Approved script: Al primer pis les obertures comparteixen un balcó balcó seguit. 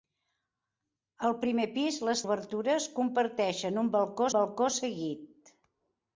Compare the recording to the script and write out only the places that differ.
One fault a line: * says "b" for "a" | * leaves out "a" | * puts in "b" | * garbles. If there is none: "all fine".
all fine